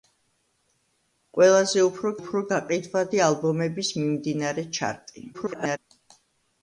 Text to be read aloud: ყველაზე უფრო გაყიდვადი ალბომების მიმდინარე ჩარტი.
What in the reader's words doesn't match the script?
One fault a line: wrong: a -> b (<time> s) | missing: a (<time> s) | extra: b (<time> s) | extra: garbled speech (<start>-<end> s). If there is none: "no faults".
extra: უფრო (2.2 s)
extra: garbled speech (5.3-5.8 s)